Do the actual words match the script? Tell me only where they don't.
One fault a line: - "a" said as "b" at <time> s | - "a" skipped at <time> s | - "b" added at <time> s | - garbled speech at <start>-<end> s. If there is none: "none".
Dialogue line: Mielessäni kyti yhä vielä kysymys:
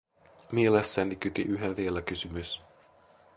none